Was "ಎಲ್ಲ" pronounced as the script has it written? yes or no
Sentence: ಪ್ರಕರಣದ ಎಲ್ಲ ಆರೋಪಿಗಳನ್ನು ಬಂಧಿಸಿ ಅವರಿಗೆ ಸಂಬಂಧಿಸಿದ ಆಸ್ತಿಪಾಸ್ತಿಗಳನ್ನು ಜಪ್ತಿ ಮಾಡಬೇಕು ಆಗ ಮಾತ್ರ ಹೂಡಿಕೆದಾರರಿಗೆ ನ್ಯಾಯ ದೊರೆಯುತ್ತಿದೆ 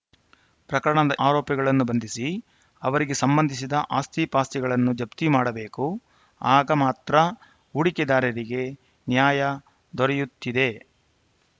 no